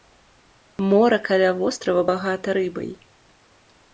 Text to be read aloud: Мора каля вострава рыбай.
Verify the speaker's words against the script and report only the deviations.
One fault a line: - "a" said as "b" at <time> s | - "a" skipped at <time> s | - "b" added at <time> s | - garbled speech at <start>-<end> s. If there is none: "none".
- "багата" added at 2.1 s